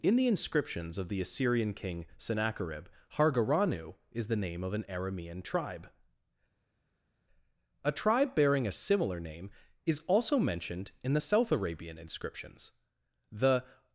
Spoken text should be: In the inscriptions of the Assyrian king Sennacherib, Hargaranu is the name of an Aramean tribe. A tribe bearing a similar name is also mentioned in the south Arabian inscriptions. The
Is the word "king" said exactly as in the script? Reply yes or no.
yes